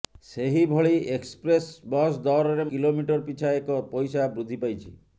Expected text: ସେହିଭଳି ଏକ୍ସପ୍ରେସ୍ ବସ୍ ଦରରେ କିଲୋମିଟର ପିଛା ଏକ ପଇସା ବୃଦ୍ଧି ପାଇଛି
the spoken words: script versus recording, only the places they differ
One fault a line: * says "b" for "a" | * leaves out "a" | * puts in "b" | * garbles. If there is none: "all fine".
all fine